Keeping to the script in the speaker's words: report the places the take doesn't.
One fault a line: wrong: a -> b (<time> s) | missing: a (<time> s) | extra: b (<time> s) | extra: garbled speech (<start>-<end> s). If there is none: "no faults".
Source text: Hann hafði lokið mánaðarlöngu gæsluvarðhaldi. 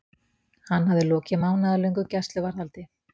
no faults